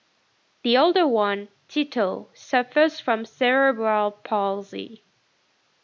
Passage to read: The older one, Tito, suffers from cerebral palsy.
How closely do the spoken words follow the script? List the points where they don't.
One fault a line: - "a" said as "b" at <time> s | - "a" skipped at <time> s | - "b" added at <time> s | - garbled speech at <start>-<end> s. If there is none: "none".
none